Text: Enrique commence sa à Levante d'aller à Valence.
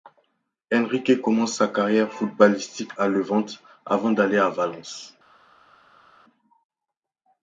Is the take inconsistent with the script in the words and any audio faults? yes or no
yes